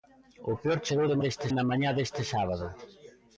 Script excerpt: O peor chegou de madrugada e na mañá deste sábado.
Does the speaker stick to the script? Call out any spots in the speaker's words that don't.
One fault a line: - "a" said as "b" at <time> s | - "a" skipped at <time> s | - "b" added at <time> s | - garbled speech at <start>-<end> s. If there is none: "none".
- "madrugada" said as "deste" at 1.2 s